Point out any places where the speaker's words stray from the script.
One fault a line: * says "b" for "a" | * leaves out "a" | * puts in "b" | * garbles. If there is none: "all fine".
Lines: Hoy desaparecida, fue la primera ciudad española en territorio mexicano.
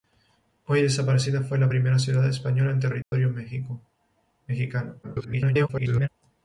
* garbles